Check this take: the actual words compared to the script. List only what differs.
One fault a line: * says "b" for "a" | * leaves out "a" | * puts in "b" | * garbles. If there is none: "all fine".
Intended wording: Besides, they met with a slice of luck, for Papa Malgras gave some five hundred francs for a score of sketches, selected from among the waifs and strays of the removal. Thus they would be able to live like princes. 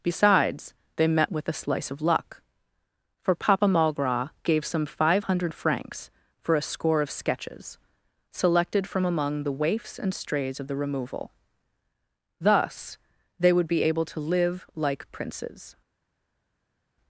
all fine